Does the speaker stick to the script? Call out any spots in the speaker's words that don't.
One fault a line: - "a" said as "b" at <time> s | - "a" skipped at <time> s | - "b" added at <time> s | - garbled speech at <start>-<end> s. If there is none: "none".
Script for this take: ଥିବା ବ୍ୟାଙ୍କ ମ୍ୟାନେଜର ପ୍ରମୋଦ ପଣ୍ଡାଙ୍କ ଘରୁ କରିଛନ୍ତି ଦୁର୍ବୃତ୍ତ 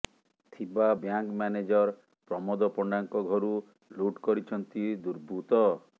- "ଲୁଟ୍" added at 4.0 s